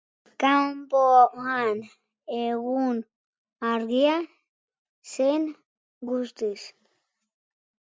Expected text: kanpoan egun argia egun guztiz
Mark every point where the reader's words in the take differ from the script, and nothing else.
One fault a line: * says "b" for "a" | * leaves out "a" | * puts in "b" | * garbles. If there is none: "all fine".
* says "zen" for "egun"